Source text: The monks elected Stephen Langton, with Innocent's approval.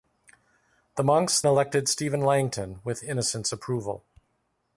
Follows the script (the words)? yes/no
yes